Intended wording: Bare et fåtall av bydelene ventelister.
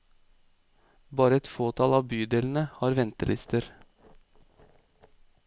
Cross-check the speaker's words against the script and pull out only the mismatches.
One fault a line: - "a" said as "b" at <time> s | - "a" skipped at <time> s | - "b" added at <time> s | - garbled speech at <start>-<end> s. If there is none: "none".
- "har" added at 2.8 s